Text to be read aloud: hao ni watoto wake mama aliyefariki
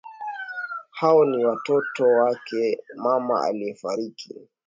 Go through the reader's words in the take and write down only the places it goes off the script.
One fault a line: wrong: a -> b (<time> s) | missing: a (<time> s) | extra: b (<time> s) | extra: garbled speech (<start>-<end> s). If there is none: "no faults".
no faults